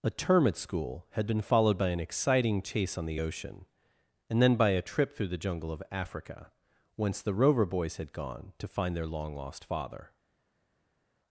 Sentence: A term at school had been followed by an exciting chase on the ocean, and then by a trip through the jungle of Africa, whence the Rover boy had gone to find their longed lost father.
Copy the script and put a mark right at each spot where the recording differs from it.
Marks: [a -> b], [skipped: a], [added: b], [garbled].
A term at school had been followed by an exciting chase on the ocean, and then by a trip through the jungle of Africa, whence the Rover [boy -> boys] had gone to find their [longed -> long] lost father.